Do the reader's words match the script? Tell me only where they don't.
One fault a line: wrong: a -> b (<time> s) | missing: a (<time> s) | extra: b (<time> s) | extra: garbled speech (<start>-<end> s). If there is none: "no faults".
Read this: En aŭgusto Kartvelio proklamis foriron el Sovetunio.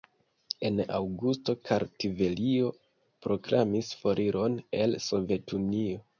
no faults